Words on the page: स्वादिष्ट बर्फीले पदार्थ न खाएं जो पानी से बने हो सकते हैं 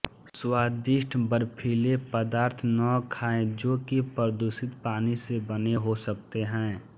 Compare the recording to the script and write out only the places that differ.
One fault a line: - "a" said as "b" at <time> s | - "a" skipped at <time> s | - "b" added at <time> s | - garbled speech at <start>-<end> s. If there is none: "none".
- "कि प्रदूषित" added at 3.9 s